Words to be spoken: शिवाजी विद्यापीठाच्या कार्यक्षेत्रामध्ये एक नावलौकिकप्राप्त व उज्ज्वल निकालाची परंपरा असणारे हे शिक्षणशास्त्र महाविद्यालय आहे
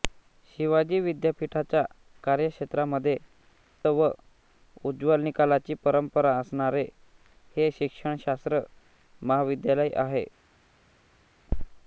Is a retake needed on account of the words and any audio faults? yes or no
yes